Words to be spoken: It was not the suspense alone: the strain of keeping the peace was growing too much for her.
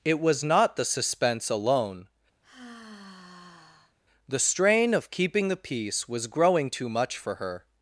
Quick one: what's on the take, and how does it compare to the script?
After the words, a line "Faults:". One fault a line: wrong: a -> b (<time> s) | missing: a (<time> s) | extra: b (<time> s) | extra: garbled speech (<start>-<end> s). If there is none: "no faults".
It was not the suspense alone: the strain of keeping the peace was growing too much for her.
Faults:
no faults